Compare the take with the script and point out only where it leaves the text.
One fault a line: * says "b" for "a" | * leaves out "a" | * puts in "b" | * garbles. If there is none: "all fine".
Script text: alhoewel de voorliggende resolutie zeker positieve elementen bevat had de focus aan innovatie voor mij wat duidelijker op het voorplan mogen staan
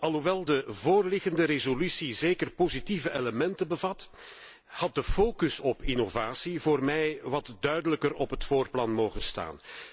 * says "op" for "aan"